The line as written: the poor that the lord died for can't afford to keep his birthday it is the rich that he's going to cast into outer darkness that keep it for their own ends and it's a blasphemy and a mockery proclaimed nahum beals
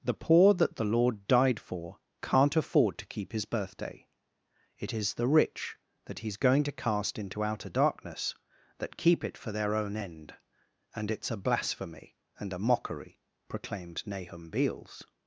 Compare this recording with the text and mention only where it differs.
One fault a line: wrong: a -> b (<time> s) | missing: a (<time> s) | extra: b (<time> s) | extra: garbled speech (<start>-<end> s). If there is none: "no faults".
wrong: ends -> end (10.0 s)